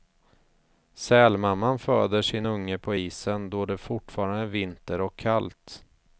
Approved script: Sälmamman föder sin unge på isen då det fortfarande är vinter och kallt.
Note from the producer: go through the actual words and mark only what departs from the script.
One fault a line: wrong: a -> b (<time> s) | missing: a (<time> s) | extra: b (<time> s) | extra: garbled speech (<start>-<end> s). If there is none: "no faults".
no faults